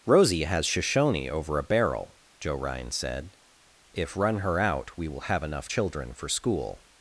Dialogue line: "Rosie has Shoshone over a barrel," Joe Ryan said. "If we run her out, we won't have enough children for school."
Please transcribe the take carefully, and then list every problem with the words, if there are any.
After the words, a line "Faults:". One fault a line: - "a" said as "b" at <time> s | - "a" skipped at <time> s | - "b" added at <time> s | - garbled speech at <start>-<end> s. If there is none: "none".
"Rosie has Shoshone over a barrel," Joe Ryan said. "If run her out, we will have enough children for school."
Faults:
- "we" skipped at 4.2 s
- "won't" said as "will" at 5.1 s